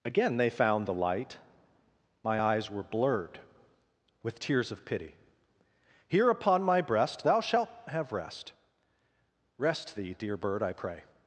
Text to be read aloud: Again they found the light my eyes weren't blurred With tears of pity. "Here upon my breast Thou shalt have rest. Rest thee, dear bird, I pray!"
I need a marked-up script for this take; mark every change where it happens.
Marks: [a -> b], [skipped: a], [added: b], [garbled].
Again they found the light my eyes [weren't -> were] blurred With tears of pity. "Here upon my breast Thou shalt have rest. Rest thee, dear bird, I pray!"